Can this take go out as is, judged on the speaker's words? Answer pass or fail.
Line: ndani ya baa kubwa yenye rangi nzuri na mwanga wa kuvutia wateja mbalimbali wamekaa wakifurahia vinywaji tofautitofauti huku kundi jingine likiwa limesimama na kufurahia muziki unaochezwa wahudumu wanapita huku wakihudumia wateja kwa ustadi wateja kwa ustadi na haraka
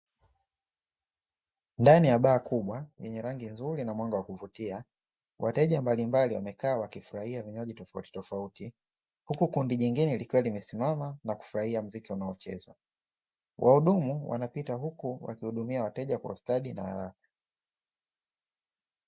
fail